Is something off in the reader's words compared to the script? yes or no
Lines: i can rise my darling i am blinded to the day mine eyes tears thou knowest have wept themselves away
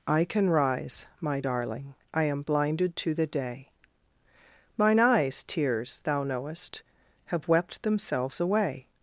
no